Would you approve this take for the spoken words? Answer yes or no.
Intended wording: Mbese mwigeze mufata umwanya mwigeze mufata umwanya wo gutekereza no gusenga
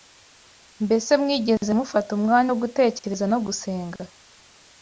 no